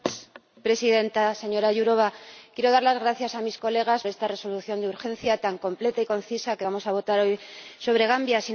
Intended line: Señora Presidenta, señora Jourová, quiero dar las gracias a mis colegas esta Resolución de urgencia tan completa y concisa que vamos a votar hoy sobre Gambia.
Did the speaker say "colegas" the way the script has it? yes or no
yes